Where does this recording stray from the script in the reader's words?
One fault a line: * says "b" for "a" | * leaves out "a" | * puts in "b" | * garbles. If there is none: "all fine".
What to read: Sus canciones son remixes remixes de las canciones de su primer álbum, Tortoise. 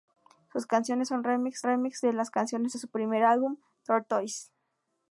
all fine